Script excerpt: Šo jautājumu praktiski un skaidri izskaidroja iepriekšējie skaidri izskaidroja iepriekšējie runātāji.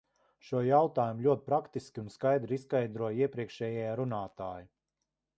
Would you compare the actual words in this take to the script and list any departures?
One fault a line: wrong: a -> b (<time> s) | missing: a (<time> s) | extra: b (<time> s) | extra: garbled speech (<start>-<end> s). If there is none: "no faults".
extra: ļoti (1.2 s)
missing: skaidri izskaidroja iepriekšējie (3.9 s)